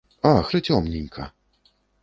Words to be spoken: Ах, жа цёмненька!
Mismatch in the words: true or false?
false